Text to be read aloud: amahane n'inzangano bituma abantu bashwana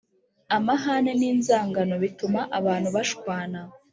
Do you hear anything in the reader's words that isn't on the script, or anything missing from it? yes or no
no